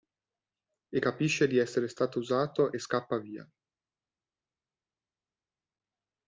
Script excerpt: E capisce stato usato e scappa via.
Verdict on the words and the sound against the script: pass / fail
fail